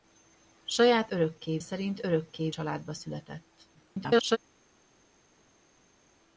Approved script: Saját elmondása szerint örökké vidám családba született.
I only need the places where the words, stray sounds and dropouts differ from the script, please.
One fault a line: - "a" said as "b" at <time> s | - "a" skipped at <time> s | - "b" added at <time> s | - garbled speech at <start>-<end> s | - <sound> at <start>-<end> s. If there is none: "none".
- "elmondása" said as "örökké" at 1.1 s
- "vidám" skipped at 2.5 s
- garbled speech at 3.7-4.4 s